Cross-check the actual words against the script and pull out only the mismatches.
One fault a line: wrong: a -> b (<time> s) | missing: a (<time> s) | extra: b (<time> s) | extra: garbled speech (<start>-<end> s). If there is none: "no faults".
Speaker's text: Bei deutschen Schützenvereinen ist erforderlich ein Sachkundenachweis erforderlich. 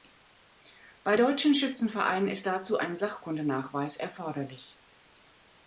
wrong: erforderlich -> dazu (2.5 s)